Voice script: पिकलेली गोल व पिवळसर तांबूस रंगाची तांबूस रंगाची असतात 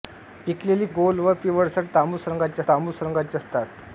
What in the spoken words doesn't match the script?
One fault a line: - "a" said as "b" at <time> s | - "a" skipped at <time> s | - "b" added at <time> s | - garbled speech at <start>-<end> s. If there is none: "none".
none